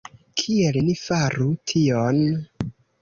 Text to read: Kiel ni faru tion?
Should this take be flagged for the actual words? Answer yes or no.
no